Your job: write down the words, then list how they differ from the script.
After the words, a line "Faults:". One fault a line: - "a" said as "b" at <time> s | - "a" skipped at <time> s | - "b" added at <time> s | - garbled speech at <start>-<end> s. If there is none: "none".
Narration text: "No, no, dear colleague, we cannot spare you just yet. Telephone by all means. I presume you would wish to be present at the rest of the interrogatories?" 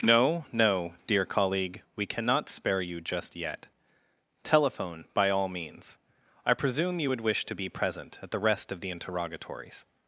"No, no, dear colleague, we cannot spare you just yet. Telephone by all means. I presume you would wish to be present at the rest of the interrogatories?"
Faults:
none